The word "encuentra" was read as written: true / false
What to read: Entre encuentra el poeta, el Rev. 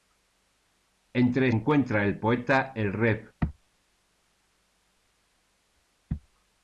true